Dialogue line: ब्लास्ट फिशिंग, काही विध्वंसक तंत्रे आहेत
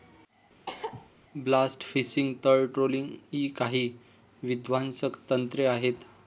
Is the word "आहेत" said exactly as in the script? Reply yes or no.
yes